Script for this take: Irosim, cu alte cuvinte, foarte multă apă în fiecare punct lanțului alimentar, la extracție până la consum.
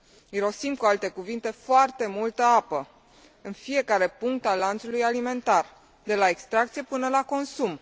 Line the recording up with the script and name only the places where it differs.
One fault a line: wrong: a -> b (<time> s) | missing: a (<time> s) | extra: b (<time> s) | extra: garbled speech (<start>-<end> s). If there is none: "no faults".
extra: al (4.5 s)
extra: de (6.0 s)